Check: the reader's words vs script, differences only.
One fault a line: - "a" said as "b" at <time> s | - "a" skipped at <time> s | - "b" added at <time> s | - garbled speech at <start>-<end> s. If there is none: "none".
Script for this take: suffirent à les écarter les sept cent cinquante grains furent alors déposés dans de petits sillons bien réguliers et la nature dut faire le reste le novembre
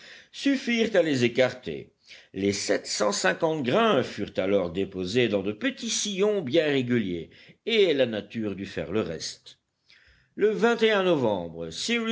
none